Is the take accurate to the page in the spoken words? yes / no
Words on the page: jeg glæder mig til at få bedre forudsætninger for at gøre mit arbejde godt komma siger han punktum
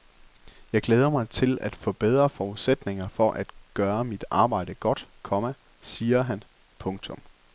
yes